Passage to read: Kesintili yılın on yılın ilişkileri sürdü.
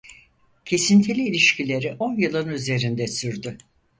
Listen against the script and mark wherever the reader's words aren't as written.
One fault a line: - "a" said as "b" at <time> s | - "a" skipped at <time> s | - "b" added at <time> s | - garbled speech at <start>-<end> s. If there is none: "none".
- "yılın" said as "ilişkileri" at 1.3 s
- "ilişkileri" said as "üzerinde" at 2.5 s